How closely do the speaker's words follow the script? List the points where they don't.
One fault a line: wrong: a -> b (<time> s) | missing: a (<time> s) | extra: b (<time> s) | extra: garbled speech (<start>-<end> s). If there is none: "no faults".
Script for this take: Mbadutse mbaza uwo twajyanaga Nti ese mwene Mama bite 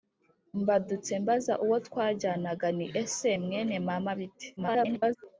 extra: garbled speech (4.6-5.2 s)